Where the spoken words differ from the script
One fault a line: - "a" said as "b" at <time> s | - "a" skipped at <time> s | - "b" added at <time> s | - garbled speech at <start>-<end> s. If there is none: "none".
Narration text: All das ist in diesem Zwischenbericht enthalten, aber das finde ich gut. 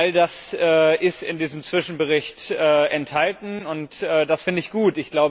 - "aber" said as "und" at 3.7 s